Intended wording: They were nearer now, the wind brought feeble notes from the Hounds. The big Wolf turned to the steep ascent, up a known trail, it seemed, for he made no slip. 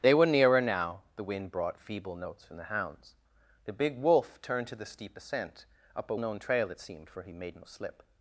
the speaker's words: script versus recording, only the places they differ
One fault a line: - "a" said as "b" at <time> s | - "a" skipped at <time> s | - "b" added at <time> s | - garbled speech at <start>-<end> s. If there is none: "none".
none